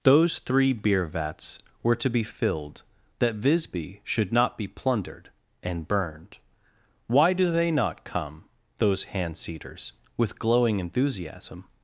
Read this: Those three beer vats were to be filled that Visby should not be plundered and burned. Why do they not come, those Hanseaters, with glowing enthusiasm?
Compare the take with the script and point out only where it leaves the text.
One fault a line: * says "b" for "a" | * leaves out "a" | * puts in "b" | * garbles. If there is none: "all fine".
all fine